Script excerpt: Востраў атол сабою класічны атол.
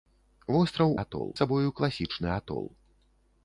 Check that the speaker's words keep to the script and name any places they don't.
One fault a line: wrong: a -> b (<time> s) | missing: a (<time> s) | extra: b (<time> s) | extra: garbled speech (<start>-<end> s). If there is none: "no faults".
no faults